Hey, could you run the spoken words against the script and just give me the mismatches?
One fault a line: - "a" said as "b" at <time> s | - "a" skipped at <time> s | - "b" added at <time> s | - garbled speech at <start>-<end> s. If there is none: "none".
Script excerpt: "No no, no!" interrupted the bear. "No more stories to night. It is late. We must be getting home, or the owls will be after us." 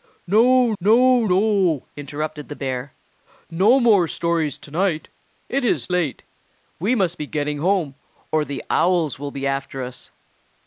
none